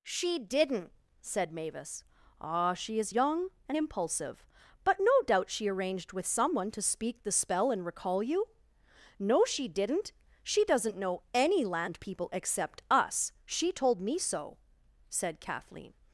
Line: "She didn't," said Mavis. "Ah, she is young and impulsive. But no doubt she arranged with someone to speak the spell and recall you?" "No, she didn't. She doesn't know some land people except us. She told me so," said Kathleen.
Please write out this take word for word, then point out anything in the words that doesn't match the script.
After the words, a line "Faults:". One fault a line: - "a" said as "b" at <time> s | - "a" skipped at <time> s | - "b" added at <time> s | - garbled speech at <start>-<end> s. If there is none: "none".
"She didn't," said Mavis. "Ah, she is young and impulsive. But no doubt she arranged with someone to speak the spell and recall you?" "No, she didn't. She doesn't know any land people except us. She told me so," said Kathleen.
Faults:
- "some" said as "any" at 11.3 s